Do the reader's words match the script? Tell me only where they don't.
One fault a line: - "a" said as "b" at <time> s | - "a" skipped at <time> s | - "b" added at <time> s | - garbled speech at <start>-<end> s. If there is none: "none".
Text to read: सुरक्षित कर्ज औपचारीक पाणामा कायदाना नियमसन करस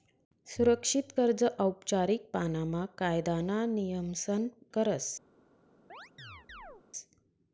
none